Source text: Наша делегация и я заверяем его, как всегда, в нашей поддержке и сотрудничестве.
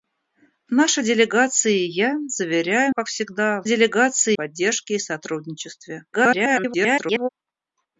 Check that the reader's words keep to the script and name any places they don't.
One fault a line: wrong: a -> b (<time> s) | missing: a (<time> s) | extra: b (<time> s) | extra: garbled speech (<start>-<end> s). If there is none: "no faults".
missing: его (3.0 s)
wrong: нашей -> делегация (3.6 s)
extra: garbled speech (6.1-7.3 s)